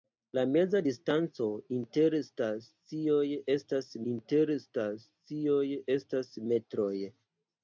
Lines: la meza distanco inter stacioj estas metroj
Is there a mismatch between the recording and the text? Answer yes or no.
yes